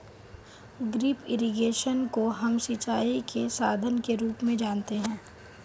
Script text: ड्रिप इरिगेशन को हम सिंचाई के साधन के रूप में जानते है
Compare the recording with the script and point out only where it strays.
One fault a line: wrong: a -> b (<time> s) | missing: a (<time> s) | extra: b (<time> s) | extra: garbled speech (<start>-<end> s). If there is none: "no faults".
no faults